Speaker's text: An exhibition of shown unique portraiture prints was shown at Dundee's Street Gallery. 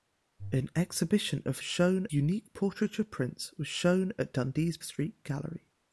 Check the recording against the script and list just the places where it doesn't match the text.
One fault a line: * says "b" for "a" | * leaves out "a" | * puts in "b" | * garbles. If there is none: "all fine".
all fine